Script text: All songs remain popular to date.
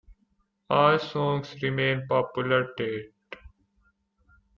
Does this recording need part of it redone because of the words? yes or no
yes